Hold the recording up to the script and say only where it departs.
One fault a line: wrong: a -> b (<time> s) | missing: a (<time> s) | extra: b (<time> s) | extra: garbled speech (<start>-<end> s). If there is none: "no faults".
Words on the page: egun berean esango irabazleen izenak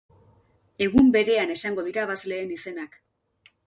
no faults